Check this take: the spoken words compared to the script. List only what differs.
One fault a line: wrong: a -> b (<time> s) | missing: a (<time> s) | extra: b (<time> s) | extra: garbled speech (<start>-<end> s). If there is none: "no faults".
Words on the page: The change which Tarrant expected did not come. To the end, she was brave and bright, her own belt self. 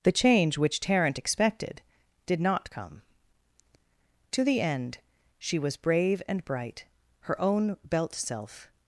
no faults